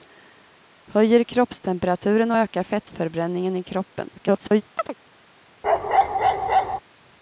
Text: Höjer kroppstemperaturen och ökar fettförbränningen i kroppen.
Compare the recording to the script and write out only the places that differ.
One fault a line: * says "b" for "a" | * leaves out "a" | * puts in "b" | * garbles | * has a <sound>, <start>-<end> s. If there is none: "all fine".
* garbles
* has a chirp, 4.8-4.9 s
* has a bark, 5.6-6.8 s